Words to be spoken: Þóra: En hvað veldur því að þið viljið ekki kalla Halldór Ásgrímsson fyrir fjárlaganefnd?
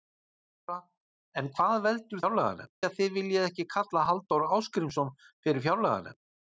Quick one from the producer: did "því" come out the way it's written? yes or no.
no